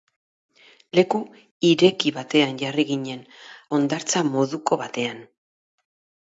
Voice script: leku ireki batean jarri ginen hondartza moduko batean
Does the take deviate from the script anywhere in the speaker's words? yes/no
no